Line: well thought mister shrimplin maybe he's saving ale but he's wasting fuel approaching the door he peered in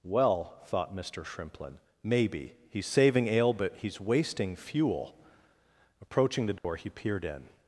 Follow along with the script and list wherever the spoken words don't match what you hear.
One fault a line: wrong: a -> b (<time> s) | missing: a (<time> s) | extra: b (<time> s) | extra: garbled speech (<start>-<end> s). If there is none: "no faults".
no faults